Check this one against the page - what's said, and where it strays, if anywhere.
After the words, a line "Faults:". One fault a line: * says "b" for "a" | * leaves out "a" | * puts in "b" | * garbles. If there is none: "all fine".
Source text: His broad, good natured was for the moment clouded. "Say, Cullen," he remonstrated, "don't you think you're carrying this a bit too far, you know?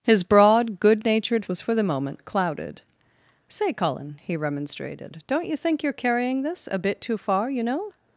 His broad, good natured was for the moment clouded. "Say, Cullen," he remonstrated, "don't you think you're carrying this a bit too far, you know?
Faults:
all fine